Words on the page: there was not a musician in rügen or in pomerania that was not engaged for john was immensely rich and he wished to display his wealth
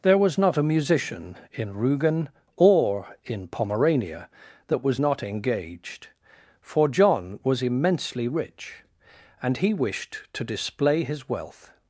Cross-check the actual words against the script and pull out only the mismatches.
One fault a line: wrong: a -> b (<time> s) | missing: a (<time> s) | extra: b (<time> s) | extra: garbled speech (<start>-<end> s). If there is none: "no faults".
no faults